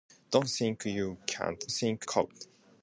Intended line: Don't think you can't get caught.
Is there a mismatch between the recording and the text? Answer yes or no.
yes